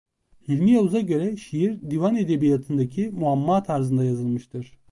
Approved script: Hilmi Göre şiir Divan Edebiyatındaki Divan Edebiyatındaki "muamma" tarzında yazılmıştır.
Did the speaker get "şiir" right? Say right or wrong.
right